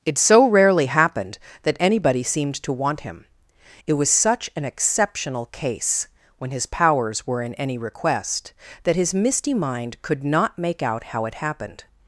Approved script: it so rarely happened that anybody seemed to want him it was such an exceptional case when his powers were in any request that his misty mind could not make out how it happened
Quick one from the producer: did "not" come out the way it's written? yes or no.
yes